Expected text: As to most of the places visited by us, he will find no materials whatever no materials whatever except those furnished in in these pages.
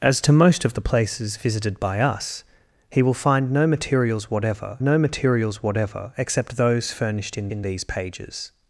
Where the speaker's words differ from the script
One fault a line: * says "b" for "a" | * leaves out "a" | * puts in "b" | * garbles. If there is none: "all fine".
all fine